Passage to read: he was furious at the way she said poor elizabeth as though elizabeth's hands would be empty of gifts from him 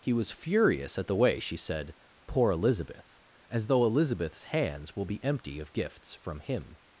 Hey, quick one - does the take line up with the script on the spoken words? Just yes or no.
no